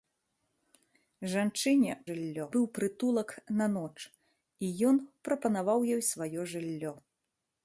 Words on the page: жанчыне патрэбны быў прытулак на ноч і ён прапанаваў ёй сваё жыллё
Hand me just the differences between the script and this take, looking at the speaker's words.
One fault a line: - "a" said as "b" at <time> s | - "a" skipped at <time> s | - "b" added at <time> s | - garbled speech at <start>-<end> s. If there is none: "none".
- "патрэбны" said as "жыллё" at 2.1 s